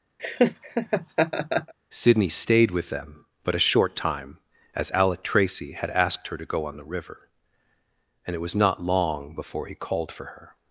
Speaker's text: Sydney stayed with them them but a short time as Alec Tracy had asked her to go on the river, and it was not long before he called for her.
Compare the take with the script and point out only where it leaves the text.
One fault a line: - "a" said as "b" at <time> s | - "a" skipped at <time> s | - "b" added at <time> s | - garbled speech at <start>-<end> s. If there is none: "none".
- "them" skipped at 3.3 s